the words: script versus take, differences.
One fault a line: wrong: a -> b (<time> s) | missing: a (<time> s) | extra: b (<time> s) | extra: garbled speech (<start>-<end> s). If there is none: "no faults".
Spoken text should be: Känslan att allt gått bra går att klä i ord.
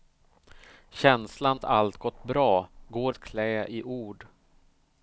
no faults